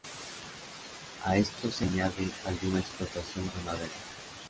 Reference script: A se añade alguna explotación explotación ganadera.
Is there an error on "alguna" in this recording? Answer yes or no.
no